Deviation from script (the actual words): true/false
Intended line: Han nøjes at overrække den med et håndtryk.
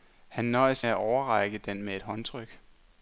false